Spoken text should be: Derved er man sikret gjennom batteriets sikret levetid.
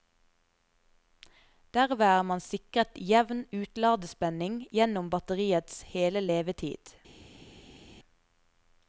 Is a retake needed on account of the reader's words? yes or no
yes